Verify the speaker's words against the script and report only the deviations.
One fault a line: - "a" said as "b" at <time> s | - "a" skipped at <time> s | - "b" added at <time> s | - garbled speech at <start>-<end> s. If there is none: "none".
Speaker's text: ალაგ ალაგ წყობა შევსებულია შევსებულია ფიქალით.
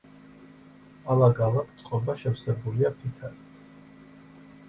- "შევსებულია" skipped at 2.9 s